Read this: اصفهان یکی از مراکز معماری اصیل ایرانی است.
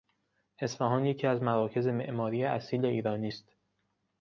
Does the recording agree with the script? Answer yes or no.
yes